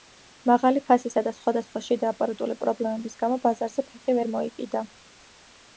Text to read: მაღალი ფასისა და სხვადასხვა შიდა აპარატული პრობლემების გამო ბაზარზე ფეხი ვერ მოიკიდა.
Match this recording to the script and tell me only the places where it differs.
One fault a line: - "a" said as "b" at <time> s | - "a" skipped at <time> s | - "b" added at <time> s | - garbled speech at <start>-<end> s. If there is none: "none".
none